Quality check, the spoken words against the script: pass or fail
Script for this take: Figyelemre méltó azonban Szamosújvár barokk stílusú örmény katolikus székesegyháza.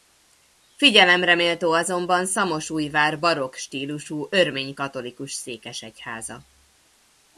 pass